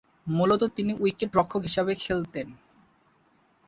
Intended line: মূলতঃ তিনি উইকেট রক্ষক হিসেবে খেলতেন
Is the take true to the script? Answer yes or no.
yes